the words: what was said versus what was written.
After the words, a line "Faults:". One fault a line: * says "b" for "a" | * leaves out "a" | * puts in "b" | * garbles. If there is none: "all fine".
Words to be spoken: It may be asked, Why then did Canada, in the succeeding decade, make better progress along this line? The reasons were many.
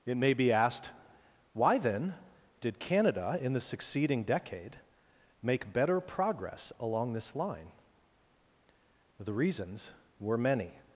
It may be asked, Why then did Canada, in the succeeding decade, make better progress along this line? The reasons were many.
Faults:
all fine